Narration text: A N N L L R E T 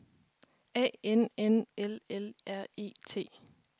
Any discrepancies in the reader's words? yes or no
no